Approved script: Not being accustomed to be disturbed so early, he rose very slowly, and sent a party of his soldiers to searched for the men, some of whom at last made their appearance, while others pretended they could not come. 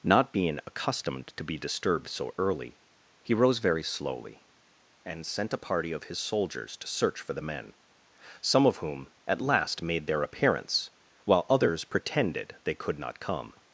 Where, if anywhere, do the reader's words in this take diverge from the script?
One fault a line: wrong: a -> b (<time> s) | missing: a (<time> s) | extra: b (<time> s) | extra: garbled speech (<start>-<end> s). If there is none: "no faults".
wrong: searched -> search (6.9 s)